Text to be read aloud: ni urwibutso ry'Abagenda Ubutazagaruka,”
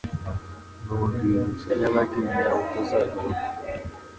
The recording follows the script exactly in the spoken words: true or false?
true